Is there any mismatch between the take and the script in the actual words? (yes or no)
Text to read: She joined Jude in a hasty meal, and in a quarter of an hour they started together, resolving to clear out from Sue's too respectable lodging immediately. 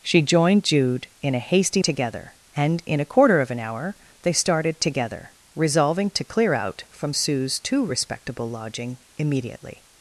yes